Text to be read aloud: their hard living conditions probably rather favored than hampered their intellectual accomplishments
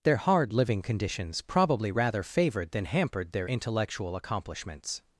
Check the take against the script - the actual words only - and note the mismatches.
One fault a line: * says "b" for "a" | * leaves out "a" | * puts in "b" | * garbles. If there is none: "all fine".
all fine